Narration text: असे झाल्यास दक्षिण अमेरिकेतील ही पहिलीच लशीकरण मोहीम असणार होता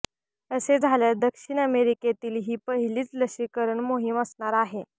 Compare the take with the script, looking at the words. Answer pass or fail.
fail